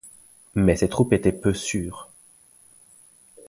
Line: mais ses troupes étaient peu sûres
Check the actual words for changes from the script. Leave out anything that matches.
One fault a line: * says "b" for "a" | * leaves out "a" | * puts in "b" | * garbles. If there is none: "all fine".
all fine